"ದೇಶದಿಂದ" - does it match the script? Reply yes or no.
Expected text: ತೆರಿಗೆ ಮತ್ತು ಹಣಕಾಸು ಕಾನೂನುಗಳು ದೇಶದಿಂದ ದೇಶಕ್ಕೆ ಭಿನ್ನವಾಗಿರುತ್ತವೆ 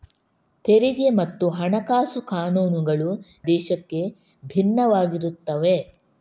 no